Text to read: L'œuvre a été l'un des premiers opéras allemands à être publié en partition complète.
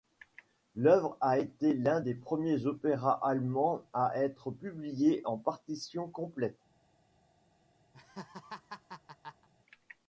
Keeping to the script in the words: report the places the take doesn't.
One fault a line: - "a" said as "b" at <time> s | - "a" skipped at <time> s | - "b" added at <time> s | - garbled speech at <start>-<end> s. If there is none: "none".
none